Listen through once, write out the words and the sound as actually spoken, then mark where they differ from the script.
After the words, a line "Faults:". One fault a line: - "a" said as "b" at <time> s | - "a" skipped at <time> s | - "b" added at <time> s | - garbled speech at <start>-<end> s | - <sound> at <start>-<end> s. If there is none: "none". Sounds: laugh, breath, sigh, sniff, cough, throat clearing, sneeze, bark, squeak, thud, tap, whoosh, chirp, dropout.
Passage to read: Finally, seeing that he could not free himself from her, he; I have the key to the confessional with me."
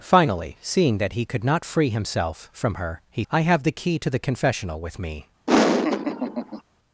Finally, seeing that he could not free himself from her, he; I have the key to the confessional with me."
Faults:
- laugh at 5.5-6.6 s